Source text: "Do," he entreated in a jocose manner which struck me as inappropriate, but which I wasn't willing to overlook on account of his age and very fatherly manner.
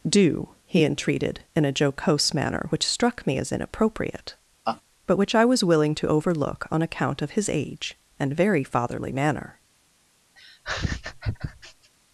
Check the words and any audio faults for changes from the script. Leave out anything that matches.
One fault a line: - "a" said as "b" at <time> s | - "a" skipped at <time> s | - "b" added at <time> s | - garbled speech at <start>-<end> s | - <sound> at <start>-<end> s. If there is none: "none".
- laugh at 4.7-4.8 s
- "wasn't" said as "was" at 5.4 s
- laugh at 10.4-11.9 s